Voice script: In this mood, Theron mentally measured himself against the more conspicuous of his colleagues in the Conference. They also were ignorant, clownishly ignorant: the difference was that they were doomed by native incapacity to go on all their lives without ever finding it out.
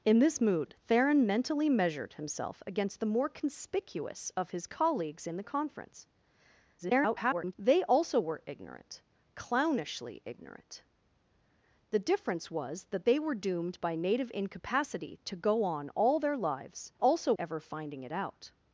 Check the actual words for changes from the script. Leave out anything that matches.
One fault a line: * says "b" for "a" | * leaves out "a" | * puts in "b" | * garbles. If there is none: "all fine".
* garbles
* says "also" for "without"